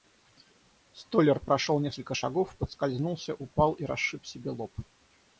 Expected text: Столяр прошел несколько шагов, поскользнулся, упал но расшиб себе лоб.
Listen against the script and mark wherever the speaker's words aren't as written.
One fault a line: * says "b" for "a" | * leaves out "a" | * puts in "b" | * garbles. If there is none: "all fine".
* says "и" for "но"